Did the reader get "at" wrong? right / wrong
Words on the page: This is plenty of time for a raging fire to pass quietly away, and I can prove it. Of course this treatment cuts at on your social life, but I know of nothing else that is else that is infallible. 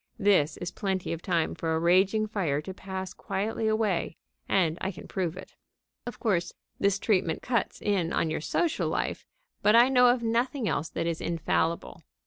wrong